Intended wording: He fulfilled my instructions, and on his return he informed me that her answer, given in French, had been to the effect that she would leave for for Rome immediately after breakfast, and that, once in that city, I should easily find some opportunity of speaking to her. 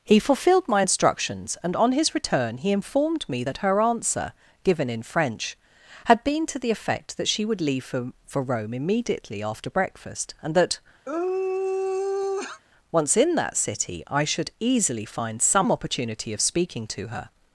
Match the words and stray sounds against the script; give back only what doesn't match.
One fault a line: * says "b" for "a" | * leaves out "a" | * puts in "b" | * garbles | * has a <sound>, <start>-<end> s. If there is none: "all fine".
* has a sigh, 11.1-12.6 s